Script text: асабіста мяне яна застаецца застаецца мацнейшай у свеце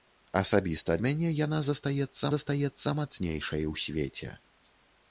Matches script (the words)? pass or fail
pass